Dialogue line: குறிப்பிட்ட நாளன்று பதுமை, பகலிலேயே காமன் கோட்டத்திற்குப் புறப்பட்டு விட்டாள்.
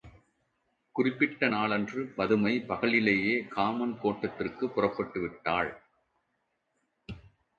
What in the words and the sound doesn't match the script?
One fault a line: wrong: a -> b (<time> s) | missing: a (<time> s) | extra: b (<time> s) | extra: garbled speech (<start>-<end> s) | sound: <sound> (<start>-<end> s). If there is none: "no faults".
no faults